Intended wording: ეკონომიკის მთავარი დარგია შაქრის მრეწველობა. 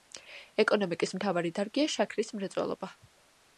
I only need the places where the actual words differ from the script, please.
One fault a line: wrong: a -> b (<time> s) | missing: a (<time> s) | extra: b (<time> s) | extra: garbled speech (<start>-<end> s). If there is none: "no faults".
no faults